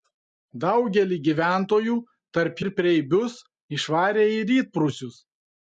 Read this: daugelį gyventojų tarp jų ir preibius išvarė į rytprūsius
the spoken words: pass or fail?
fail